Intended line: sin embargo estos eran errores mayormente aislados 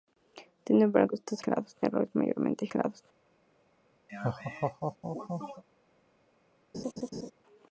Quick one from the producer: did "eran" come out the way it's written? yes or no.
no